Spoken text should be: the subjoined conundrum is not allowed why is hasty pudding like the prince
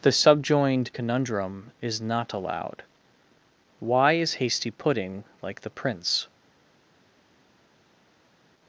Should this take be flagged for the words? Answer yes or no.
no